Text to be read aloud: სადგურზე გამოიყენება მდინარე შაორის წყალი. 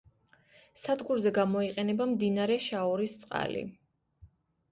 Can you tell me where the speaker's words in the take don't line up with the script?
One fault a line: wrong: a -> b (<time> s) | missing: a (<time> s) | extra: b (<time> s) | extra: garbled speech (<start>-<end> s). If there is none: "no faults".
no faults